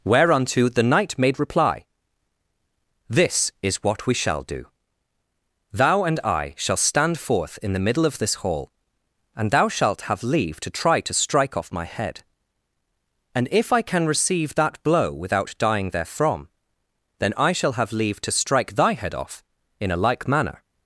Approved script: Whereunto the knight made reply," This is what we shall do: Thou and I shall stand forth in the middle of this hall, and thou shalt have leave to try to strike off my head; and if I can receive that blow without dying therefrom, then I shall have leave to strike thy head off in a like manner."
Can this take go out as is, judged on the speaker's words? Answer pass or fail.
pass